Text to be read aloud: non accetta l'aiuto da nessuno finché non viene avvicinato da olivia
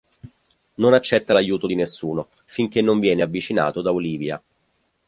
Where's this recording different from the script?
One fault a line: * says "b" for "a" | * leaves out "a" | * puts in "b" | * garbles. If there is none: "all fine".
* says "di" for "da"